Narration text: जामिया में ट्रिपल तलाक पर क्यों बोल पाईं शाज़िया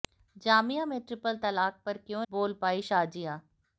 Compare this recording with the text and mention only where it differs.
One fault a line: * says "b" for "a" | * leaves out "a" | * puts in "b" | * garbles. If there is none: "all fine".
all fine